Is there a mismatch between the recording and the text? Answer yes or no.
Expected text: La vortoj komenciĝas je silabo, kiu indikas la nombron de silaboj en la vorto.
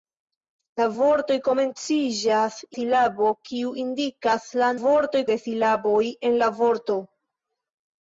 yes